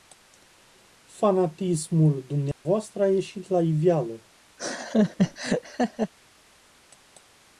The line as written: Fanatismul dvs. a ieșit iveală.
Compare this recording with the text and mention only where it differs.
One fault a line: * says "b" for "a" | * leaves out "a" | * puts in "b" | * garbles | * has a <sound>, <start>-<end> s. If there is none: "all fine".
* has a dropout, 2.5-2.7 s
* puts in "la"
* has a laugh, 4.6-6.1 s